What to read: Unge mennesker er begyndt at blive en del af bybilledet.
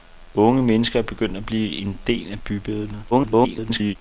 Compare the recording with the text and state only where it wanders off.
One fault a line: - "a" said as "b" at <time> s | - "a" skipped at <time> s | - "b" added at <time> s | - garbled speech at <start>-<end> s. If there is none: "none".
- garbled speech at 3.1-4.0 s